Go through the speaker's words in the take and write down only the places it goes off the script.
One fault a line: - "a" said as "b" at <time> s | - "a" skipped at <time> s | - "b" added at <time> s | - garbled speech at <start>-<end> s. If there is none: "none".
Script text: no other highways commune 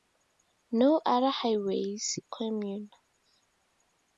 none